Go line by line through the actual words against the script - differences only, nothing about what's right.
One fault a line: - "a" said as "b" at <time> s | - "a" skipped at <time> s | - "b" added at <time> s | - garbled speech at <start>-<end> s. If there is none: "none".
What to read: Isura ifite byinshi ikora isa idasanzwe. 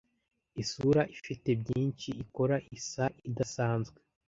none